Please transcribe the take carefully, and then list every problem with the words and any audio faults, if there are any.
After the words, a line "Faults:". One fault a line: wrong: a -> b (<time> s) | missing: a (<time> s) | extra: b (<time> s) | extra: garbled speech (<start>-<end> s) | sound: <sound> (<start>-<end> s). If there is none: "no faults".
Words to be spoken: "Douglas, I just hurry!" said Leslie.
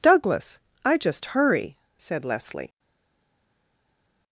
"Douglas, I just hurry!" said Leslie.
Faults:
no faults